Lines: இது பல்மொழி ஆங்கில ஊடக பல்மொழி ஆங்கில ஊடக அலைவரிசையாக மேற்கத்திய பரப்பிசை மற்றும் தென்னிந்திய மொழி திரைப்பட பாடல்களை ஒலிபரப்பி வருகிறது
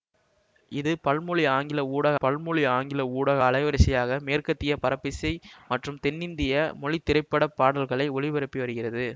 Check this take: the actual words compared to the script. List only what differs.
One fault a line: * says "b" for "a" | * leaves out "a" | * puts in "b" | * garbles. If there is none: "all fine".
all fine